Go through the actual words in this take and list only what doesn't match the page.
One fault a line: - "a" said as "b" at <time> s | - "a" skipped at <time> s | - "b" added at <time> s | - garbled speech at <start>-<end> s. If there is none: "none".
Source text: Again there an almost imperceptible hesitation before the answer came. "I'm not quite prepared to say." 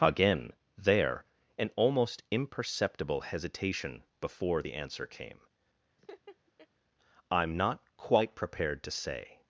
none